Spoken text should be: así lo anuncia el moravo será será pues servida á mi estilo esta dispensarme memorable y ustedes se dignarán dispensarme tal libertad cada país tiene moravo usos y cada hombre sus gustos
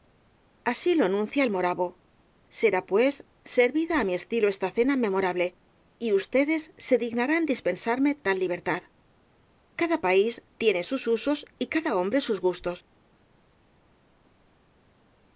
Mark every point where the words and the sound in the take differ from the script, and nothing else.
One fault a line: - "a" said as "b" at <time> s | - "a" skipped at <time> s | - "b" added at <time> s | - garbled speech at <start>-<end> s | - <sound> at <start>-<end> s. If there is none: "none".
- "será" skipped at 2.8 s
- "dispensarme" said as "cena" at 4.8 s
- "moravo" said as "sus" at 10.9 s